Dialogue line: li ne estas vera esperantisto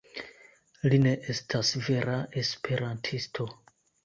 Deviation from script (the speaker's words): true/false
false